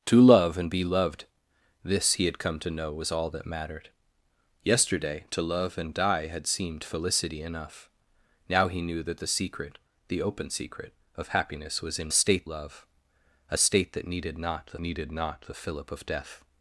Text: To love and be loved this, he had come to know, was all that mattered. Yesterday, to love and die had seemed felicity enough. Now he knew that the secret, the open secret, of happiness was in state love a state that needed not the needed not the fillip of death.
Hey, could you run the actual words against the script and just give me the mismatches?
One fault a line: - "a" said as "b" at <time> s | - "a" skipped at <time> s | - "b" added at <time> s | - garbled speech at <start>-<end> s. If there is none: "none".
none